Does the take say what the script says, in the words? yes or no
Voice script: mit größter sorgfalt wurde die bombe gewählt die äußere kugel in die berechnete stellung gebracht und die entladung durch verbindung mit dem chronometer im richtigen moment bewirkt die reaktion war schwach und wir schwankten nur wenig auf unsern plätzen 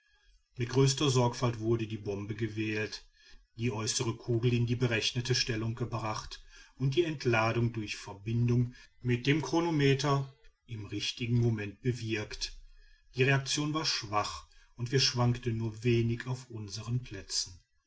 yes